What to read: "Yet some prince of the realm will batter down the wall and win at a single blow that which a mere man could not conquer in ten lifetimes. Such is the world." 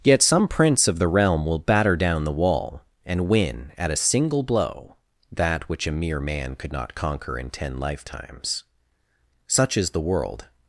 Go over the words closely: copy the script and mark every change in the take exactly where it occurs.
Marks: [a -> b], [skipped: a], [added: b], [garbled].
"Yet some prince of the realm will batter down the wall and win at a single blow that which a mere man could not conquer in ten lifetimes. Such is the world."